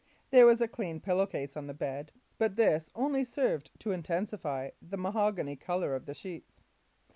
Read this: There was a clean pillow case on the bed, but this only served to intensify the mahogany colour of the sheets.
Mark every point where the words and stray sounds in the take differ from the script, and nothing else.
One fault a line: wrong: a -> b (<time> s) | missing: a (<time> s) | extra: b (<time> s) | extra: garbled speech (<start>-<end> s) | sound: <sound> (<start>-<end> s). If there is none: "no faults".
no faults